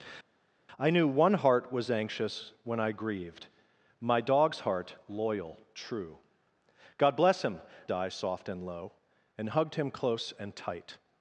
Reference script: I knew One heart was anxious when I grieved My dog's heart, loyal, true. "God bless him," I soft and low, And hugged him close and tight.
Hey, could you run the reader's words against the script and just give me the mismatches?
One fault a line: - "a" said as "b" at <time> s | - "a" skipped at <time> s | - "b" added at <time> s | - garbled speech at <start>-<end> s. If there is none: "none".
none